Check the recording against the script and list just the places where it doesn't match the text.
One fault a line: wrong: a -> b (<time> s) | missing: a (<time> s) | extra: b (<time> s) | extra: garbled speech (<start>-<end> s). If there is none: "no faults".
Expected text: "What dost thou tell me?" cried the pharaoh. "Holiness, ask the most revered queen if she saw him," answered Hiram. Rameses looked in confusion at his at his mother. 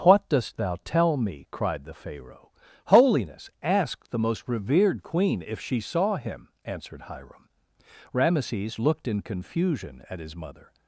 missing: at his (10.4 s)